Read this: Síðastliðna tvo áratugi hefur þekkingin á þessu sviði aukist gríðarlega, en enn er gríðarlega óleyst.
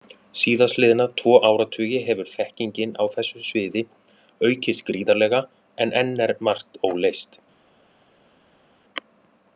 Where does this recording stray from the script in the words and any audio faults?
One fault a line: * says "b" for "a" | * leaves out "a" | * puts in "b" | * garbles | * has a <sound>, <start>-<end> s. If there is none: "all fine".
* says "margt" for "gríðarlega"